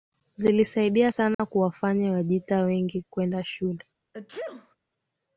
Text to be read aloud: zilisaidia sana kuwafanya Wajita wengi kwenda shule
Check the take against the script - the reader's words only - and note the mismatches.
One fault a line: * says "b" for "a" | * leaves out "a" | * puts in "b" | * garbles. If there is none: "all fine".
all fine